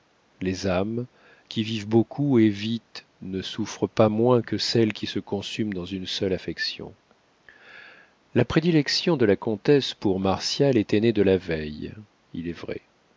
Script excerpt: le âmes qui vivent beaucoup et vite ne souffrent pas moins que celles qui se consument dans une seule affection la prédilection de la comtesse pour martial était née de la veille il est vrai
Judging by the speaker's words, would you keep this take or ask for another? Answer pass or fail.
fail